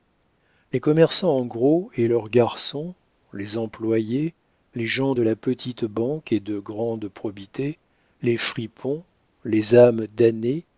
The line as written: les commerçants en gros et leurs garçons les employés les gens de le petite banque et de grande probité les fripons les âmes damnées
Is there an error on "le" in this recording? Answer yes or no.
yes